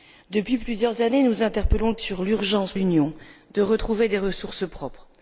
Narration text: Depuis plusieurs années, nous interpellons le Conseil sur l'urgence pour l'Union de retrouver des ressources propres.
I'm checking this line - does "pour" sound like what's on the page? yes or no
no